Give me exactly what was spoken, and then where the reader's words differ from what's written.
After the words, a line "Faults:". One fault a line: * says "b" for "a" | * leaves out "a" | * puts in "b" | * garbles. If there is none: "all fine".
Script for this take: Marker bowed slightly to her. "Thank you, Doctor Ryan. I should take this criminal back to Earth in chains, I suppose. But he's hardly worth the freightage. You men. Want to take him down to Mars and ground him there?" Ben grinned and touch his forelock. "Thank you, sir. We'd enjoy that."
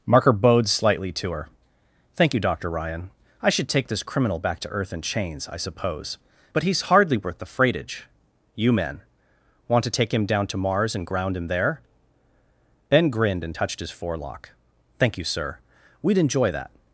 Marker bowed slightly to her. "Thank you, Doctor Ryan. I should take this criminal back to Earth in chains, I suppose. But he's hardly worth the freightage. You men. Want to take him down to Mars and ground him there?" Ben grinned and touched his forelock. "Thank you, sir. We'd enjoy that."
Faults:
* says "touched" for "touch"